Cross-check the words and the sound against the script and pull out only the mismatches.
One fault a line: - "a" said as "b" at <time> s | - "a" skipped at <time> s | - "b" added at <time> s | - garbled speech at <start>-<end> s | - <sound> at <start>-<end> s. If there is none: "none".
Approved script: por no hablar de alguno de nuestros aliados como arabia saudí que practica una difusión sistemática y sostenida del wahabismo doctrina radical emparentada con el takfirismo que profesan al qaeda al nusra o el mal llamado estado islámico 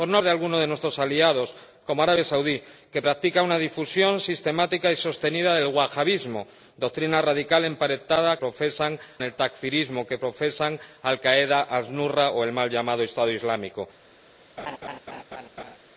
- "hablar" skipped at 0.2 s
- "con" said as "profesan" at 8.4 s
- laugh at 14.6-15.8 s